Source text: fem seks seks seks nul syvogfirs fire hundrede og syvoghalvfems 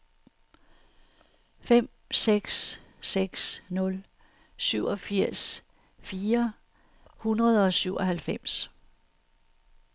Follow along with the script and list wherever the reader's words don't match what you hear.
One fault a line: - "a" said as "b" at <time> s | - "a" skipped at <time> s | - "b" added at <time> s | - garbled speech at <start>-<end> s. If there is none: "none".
- "seks" skipped at 3.6 s